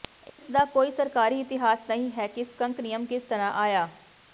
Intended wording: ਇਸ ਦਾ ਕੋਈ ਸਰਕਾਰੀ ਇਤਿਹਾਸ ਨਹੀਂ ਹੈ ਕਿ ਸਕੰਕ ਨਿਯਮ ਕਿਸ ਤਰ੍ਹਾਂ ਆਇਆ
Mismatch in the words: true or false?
false